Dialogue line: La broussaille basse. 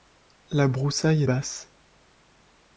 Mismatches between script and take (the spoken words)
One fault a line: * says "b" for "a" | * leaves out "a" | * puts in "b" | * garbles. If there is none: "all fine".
all fine